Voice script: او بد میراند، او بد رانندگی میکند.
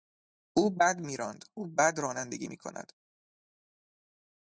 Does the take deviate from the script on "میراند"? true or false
false